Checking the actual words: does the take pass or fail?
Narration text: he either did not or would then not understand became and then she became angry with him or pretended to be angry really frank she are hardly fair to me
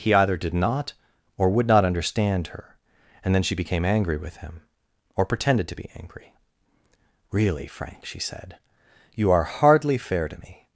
fail